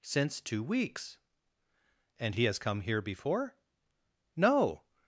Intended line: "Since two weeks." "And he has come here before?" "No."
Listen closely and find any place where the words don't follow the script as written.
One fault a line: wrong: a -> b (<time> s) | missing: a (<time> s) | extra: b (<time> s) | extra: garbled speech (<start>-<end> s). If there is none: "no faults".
no faults